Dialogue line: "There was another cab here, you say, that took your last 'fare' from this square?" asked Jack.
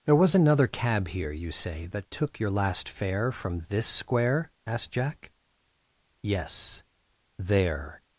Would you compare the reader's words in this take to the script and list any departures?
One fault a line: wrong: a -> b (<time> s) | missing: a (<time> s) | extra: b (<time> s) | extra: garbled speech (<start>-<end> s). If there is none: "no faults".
extra: Yes there (6.2 s)